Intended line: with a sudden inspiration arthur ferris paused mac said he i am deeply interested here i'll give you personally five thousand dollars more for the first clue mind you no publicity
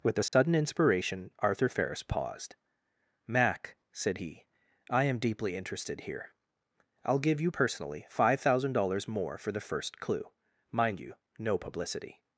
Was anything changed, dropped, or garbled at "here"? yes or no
no